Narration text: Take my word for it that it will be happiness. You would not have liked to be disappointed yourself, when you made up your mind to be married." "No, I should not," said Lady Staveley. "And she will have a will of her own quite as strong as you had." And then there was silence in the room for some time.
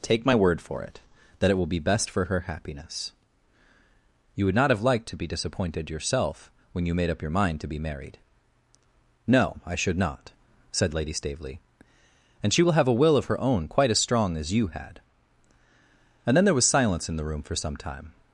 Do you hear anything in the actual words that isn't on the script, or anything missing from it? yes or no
yes